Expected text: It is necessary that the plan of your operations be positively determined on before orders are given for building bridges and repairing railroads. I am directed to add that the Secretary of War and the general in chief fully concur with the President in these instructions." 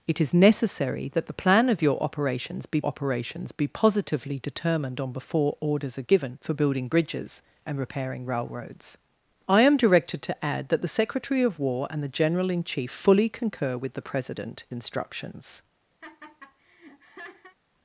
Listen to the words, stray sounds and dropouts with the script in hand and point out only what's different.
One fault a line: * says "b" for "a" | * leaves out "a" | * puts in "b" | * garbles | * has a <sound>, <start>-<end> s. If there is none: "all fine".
* puts in "operations be"
* leaves out "in these"
* has a laugh, 16.0-17.6 s